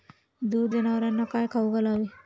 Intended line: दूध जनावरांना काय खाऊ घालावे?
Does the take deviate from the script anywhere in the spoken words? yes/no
no